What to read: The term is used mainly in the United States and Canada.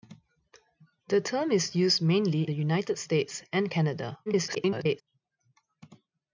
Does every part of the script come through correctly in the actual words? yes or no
no